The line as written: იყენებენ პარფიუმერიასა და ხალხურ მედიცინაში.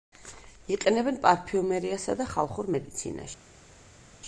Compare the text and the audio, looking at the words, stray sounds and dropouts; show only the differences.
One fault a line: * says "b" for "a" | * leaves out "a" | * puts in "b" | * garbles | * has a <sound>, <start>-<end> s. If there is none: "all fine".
all fine